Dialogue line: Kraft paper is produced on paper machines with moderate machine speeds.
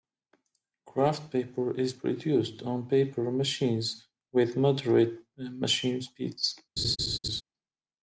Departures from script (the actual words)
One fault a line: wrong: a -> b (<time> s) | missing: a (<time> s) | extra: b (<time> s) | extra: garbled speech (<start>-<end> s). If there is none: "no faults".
no faults